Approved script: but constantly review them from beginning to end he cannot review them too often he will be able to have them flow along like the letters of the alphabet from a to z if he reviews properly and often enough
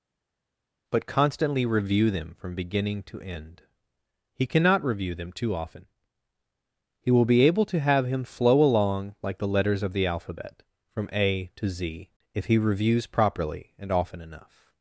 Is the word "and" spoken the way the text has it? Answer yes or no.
yes